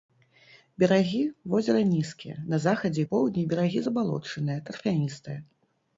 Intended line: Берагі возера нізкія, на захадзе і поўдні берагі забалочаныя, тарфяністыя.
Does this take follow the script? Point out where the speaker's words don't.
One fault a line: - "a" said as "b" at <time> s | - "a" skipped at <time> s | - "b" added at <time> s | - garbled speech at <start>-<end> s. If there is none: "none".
none